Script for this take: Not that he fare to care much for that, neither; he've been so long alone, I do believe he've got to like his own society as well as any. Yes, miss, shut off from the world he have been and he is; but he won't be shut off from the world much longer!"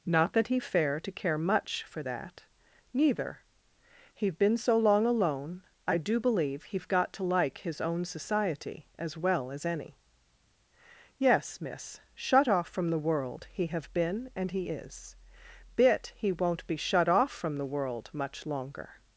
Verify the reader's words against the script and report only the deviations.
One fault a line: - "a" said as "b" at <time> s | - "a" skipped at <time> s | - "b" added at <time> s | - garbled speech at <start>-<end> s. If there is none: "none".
- "but" said as "bit" at 15.8 s